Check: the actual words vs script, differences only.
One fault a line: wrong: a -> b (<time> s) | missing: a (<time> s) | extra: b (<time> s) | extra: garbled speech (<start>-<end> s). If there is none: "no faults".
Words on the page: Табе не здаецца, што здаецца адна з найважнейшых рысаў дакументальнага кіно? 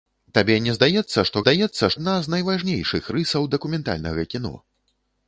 no faults